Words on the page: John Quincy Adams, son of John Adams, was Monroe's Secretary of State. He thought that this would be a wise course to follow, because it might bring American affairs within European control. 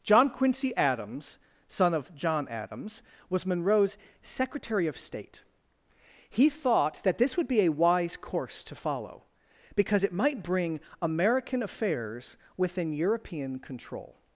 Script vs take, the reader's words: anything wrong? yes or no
no